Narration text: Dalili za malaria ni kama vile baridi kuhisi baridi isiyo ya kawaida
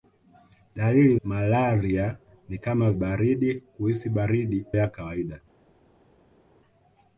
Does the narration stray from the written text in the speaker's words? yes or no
yes